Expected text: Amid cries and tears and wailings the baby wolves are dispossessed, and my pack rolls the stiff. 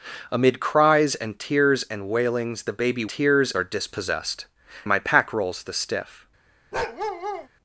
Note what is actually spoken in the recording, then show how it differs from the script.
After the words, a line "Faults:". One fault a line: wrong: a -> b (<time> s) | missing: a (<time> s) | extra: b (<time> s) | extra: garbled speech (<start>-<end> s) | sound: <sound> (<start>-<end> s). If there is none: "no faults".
Amid cries and tears and wailings the baby tears are dispossessed, my pack rolls the stiff.
Faults:
wrong: wolves -> tears (3.1 s)
missing: and (4.5 s)
sound: bark (6.7-7.5 s)